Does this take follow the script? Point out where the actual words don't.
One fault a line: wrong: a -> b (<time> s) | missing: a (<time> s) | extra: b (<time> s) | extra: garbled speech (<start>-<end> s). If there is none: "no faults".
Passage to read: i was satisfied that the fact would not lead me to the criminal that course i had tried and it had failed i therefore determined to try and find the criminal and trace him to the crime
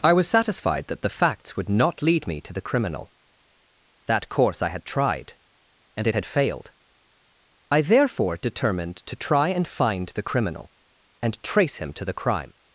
wrong: fact -> facts (1.1 s)